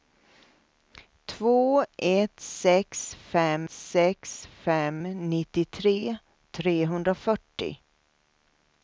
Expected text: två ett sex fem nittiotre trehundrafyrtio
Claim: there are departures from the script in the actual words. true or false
true